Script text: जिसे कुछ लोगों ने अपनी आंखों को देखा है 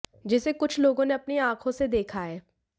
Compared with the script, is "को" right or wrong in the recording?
wrong